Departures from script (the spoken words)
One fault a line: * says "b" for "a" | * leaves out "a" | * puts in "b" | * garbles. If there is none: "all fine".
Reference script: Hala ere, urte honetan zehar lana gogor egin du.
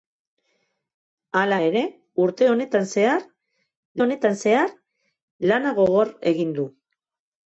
* puts in "honetan zehar"